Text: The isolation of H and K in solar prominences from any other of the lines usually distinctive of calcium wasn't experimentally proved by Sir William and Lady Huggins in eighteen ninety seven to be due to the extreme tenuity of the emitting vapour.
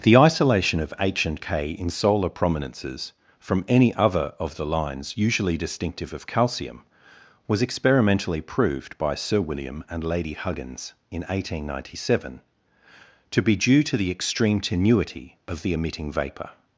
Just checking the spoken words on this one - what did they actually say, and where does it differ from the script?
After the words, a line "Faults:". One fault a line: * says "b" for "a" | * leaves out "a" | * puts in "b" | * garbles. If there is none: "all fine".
The isolation of H and K in solar prominences from any other of the lines usually distinctive of calcium was experimentally proved by Sir William and Lady Huggins in eighteen ninety seven to be due to the extreme tenuity of the emitting vapour.
Faults:
* says "was" for "wasn't"